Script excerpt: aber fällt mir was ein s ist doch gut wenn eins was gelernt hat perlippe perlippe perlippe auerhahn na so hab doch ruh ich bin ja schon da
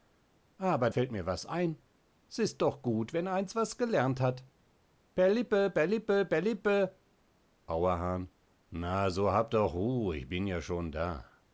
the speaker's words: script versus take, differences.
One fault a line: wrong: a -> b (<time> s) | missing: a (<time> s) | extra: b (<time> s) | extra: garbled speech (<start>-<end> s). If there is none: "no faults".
no faults